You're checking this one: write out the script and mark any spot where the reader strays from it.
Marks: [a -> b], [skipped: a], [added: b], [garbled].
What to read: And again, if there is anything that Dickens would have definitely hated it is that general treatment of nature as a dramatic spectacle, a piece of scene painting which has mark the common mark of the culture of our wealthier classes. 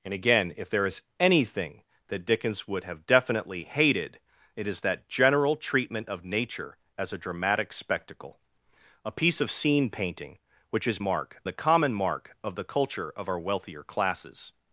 And again, if there is anything that Dickens would have definitely hated it is that general treatment of nature as a dramatic spectacle, a piece of scene painting which has mark the common mark of the culture of our wealthier classes.